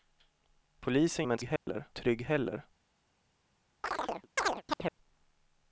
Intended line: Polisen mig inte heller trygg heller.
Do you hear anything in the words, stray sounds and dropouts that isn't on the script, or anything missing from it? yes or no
yes